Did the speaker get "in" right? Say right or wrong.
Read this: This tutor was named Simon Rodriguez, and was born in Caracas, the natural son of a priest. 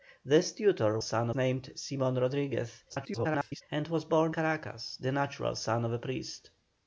wrong